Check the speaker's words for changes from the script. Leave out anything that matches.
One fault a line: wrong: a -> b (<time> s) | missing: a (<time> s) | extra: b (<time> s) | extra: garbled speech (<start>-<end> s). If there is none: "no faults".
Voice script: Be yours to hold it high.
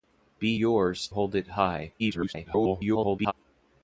missing: to (1.1 s)
extra: garbled speech (2.0-3.3 s)